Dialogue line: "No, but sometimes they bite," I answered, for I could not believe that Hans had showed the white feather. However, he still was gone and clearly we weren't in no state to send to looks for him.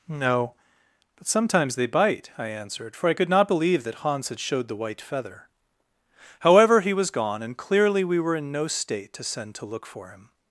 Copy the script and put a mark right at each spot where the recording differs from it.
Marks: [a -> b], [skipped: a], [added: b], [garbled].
"No, but sometimes they bite," I answered, for I could not believe that Hans had showed the white feather. However, he [skipped: still] was gone and clearly we [weren't -> were] in no state to send to [looks -> look] for him.